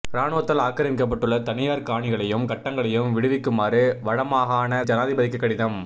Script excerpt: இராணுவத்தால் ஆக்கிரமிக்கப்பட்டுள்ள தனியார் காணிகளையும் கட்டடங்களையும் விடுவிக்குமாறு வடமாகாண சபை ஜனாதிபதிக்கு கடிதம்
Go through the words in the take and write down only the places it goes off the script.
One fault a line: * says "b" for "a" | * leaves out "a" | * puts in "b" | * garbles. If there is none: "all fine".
* leaves out "சபை"